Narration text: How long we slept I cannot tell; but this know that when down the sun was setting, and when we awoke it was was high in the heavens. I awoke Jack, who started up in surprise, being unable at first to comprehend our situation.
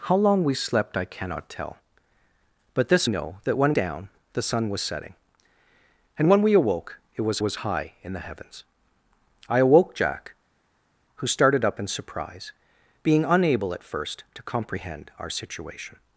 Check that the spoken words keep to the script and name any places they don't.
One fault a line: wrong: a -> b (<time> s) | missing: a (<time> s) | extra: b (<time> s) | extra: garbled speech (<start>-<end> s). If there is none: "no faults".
no faults